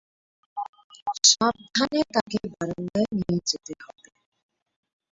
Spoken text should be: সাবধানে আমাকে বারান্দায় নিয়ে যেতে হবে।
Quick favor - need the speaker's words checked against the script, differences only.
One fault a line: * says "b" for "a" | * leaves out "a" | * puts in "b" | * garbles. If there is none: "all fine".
* says "তাকে" for "আমাকে"